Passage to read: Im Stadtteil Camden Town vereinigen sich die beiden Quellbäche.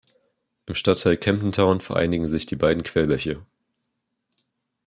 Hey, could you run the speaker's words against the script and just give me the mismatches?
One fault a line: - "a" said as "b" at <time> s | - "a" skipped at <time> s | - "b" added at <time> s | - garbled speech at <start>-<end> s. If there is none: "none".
none